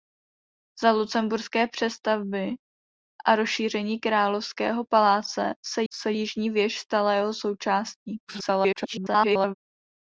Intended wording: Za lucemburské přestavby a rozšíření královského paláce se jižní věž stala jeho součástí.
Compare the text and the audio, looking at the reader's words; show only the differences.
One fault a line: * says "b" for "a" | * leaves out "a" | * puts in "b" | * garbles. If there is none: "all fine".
* puts in "se"
* garbles